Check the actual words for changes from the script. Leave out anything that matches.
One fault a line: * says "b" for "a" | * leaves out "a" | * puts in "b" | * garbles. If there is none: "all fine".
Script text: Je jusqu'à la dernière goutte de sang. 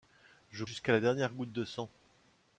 all fine